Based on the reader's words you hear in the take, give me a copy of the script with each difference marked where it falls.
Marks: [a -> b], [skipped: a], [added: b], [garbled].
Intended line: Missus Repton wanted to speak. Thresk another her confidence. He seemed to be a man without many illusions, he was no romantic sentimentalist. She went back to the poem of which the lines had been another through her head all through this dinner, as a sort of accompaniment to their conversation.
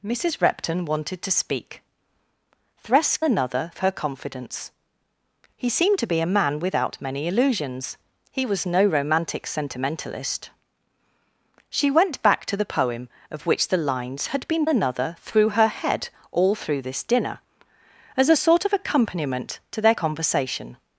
Missus Repton wanted to speak. Thresk another her confidence. He seemed to be a man without many illusions, he was no romantic sentimentalist. She went back to the poem of which the lines had been another through her head all through this dinner, as a sort of accompaniment to their conversation.